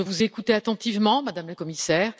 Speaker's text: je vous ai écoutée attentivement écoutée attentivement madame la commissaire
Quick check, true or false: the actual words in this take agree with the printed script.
false